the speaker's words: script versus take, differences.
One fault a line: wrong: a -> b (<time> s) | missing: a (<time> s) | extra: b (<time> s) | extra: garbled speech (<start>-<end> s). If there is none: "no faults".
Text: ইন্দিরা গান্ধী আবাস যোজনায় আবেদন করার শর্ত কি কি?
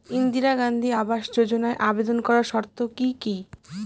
no faults